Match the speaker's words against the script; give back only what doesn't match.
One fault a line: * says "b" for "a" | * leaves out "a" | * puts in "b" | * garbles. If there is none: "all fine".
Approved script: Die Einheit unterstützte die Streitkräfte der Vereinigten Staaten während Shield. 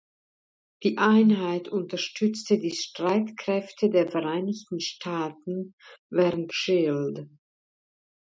all fine